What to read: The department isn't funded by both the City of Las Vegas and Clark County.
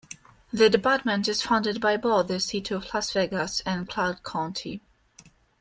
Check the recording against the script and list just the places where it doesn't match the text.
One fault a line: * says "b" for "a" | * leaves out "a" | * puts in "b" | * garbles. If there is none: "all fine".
* says "is" for "isn't"